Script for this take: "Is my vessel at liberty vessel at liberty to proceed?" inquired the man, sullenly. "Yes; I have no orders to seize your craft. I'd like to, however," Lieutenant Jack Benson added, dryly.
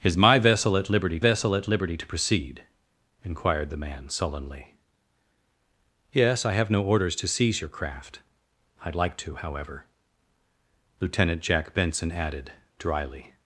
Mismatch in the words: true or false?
false